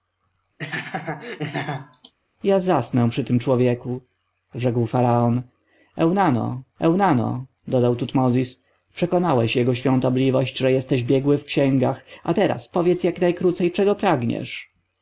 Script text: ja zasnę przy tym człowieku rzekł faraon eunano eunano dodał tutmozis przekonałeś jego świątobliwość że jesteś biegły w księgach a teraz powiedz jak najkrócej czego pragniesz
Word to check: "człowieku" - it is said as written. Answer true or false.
true